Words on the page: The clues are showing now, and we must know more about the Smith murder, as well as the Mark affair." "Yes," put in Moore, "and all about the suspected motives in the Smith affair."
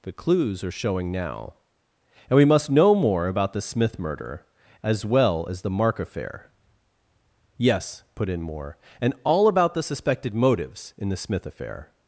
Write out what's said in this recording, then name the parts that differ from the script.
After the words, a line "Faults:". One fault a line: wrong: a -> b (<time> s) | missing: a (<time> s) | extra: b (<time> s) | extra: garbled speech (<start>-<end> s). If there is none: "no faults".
The clues are showing now, and we must know more about the Smith murder, as well as the Mark affair." "Yes," put in Moore, "and all about the suspected motives in the Smith affair."
Faults:
no faults